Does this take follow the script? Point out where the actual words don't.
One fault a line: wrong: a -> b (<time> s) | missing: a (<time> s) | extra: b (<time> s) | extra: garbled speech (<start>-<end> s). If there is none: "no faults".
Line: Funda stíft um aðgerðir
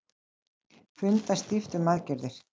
no faults